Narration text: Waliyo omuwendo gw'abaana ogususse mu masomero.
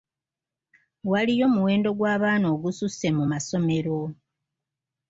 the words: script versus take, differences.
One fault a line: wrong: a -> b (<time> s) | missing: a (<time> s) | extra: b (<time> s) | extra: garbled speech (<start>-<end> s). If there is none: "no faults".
no faults